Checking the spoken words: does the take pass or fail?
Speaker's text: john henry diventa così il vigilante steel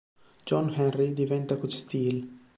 fail